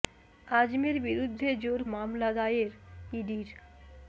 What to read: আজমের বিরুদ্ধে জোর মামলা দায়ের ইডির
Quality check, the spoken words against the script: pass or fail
pass